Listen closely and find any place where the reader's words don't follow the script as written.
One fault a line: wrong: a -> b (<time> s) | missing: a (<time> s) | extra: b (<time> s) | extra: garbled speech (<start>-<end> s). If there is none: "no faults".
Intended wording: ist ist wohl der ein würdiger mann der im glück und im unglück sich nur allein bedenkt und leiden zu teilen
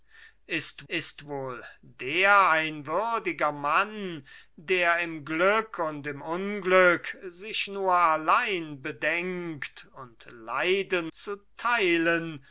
no faults